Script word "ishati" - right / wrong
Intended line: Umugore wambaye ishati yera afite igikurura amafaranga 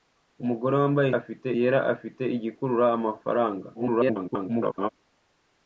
wrong